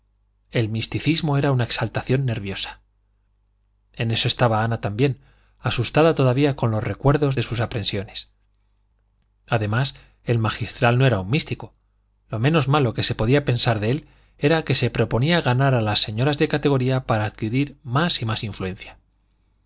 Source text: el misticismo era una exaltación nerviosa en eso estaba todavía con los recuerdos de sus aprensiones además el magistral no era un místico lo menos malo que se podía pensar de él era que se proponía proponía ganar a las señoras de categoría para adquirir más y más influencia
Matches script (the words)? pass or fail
fail